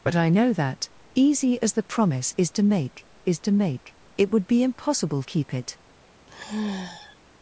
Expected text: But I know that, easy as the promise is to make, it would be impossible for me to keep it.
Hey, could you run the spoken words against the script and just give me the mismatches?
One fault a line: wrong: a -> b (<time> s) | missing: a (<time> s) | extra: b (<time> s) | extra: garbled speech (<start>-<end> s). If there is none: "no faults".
extra: is to make (3.2 s)
missing: for me to (5.2 s)